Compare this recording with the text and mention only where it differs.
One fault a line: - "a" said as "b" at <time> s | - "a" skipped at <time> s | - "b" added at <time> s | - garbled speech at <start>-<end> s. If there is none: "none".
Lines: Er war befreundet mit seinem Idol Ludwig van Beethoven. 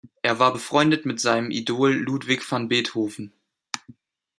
none